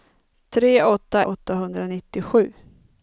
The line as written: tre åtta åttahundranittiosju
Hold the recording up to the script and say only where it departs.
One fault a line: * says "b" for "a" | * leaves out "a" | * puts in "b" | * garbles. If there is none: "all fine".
all fine